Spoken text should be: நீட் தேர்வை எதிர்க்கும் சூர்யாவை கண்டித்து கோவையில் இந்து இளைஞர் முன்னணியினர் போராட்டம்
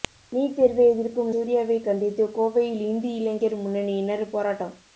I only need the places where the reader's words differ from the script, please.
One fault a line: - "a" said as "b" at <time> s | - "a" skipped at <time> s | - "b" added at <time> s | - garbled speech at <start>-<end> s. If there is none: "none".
none